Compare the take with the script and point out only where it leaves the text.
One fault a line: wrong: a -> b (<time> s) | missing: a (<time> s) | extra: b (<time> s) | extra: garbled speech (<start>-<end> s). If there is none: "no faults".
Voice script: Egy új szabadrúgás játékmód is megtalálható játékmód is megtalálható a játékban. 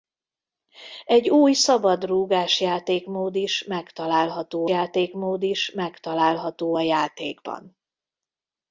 no faults